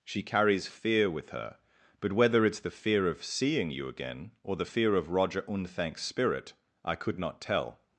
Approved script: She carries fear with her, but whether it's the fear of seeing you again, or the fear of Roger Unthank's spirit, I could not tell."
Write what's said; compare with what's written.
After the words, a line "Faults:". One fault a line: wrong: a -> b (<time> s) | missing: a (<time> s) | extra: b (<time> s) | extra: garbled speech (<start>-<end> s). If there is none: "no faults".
She carries fear with her, but whether it's the fear of seeing you again, or the fear of Roger Unthank's spirit, I could not tell."
Faults:
no faults